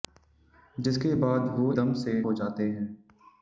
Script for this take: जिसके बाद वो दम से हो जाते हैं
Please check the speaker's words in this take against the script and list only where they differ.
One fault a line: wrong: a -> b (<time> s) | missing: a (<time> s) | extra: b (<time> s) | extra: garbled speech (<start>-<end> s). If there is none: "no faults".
no faults